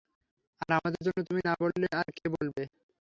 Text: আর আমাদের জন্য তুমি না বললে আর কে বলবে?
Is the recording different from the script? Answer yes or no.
no